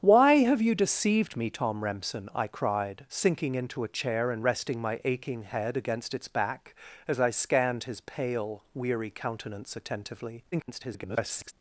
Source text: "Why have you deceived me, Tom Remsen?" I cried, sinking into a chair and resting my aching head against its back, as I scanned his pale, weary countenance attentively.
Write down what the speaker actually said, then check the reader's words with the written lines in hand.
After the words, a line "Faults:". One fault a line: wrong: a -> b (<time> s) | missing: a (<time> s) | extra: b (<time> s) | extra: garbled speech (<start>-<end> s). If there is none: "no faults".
"Why have you deceived me, Tom Remsen?" I cried, sinking into a chair and resting my aching head against its back, as I scanned his pale, weary countenance attentively. [garbled]
Faults:
extra: garbled speech (10.5-11.5 s)